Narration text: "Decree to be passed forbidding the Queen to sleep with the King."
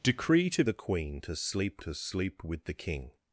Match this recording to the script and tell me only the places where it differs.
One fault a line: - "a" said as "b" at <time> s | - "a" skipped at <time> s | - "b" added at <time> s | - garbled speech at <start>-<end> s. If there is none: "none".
- "be passed forbidding the Queen" said as "the Queen to sleep" at 0.6 s